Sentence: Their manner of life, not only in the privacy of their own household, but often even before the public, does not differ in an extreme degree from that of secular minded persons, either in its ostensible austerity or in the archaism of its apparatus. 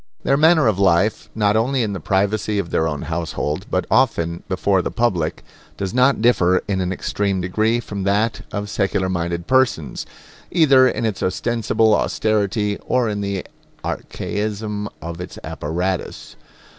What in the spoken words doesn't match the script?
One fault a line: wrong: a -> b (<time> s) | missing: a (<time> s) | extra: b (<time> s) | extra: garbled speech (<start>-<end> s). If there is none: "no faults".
missing: even (4.4 s)